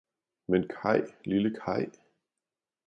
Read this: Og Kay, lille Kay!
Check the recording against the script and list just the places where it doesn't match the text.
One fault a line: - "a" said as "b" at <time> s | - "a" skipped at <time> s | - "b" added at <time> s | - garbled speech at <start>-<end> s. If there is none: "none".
- "Og" said as "Men" at 0.5 s